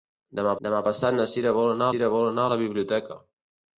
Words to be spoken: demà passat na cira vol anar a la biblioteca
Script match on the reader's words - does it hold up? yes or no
no